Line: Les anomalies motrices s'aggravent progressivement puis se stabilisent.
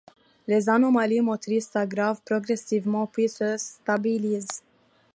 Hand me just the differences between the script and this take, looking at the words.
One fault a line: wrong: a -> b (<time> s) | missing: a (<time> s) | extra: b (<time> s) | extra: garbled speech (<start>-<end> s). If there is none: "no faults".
no faults